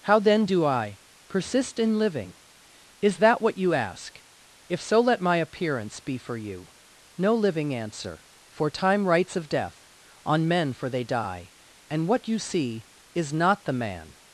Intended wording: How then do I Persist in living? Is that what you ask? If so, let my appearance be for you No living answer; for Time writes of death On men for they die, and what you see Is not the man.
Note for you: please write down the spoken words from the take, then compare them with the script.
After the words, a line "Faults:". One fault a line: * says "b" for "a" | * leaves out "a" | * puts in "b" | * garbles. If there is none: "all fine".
How then do I Persist in living? Is that what you ask? If so, let my appearance be for you No living answer; for Time writes of death On men for they die, and what you see Is not the man.
Faults:
all fine